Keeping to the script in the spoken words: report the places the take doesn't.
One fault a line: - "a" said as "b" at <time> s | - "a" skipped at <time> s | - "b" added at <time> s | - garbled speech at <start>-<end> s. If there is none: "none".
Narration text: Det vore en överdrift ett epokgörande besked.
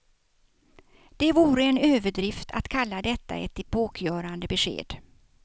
- "att kalla detta" added at 2.5 s